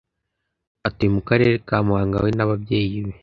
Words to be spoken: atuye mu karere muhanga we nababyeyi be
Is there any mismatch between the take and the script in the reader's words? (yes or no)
yes